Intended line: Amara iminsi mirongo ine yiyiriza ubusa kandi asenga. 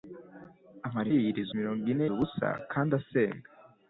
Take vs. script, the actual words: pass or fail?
fail